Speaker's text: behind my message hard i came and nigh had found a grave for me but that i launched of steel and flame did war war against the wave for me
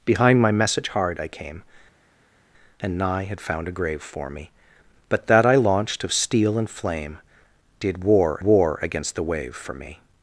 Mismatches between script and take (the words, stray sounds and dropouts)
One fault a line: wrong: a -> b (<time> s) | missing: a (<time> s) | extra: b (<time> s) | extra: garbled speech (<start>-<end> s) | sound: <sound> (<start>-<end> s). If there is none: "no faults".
no faults